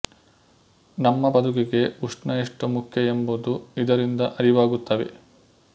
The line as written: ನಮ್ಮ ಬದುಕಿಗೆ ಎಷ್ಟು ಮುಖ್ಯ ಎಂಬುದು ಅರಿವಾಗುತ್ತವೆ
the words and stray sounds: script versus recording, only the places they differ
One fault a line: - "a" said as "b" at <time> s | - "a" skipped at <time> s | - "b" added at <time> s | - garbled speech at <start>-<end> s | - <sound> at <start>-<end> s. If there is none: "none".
- "ಉಷ್ಣ" added at 2.0 s
- "ಇದರಿಂದ" added at 3.8 s